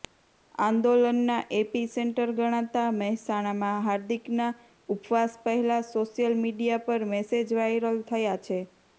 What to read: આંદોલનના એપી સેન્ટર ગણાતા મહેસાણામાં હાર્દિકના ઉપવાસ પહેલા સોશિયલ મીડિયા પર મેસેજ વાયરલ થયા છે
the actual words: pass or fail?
pass